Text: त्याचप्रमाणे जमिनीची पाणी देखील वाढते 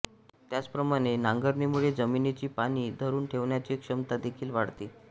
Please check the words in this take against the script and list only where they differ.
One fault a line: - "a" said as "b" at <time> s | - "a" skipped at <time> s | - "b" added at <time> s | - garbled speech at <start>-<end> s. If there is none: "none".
- "नांगरणीमुळे" added at 1.2 s
- "धरून ठेवण्याची क्षमता" added at 3.0 s